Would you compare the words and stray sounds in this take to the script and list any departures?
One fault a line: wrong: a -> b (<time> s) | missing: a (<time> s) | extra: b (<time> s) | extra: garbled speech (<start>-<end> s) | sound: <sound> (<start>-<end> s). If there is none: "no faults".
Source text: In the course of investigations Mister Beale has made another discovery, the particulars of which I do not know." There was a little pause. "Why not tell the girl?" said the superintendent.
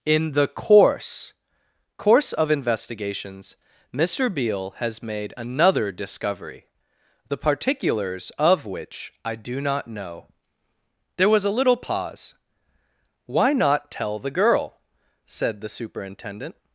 extra: course (2.0 s)